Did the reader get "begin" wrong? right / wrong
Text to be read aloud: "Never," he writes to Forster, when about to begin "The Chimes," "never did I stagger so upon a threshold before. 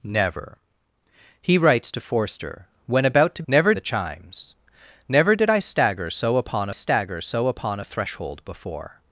wrong